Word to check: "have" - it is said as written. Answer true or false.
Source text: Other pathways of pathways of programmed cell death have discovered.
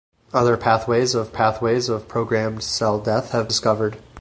true